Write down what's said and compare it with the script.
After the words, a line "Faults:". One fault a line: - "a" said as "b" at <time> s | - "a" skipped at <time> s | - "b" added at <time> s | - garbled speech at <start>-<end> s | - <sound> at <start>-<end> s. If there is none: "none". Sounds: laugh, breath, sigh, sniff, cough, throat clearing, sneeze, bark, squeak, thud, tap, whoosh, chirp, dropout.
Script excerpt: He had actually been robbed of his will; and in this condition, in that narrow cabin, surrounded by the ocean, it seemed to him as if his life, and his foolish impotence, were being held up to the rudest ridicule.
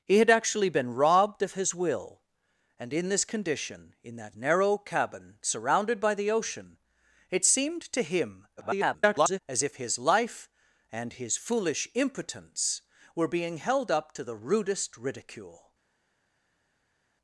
He had actually been robbed of his will; and in this condition, in that narrow cabin, surrounded by the ocean, it seemed to him [garbled] as if his life, and his foolish impotence, were being held up to the rudest ridicule.
Faults:
- garbled speech at 8.6-9.4 s